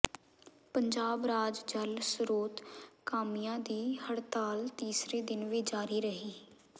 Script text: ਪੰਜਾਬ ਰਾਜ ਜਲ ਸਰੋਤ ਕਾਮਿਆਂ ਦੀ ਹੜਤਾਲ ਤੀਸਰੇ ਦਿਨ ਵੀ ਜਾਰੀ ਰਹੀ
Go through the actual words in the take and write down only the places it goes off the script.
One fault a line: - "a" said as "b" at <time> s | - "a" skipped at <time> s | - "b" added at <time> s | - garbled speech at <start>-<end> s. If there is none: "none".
none